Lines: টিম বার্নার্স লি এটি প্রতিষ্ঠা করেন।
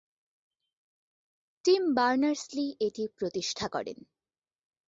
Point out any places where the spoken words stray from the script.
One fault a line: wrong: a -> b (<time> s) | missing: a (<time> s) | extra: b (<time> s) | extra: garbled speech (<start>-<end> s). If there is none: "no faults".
no faults